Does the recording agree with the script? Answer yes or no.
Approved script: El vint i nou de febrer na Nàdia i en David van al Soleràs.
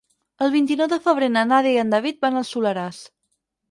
yes